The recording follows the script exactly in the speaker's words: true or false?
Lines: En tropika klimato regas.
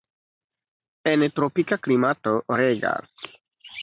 true